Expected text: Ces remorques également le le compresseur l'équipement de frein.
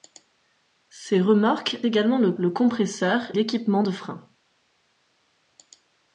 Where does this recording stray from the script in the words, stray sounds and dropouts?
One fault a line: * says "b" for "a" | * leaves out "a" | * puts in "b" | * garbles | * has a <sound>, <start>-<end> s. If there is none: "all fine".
all fine